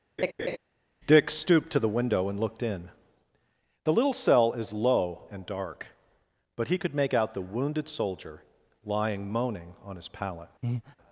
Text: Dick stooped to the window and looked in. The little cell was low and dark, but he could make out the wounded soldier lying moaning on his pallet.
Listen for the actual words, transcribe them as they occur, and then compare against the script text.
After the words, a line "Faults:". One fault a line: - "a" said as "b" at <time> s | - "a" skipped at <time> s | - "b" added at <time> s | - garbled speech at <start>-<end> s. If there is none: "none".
Dick stooped to the window and looked in. The little cell is low and dark, but he could make out the wounded soldier lying moaning on his pallet.
Faults:
- "was" said as "is" at 4.5 s